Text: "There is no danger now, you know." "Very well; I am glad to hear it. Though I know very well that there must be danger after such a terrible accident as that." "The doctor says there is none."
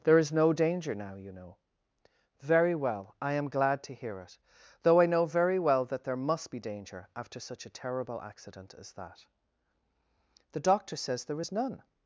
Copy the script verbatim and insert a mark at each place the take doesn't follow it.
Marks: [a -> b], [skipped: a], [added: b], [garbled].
"There is no danger now, you know." "Very well; I am glad to hear it. Though I know very well that there must be danger after such a terrible accident as that." "The doctor says there is none."